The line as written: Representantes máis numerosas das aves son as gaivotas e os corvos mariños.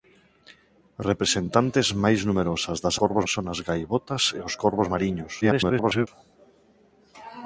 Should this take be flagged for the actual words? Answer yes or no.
yes